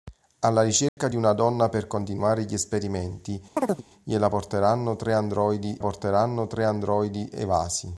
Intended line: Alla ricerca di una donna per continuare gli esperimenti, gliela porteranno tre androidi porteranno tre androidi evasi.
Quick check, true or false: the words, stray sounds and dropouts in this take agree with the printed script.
false